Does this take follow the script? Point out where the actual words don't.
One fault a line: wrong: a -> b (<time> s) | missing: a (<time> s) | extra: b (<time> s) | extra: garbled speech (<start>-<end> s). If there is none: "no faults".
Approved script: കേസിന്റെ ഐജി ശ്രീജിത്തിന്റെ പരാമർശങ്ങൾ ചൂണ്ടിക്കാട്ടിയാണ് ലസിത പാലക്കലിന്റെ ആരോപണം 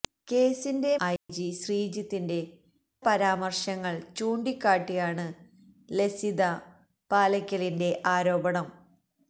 no faults